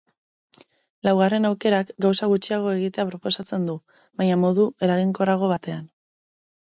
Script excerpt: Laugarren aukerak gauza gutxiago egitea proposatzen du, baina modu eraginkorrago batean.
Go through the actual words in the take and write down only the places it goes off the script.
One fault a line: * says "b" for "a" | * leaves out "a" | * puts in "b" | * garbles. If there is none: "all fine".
all fine